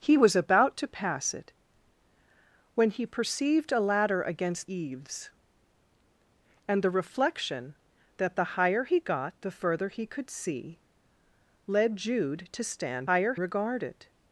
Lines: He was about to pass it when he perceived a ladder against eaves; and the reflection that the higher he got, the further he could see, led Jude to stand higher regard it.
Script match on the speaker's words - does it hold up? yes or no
yes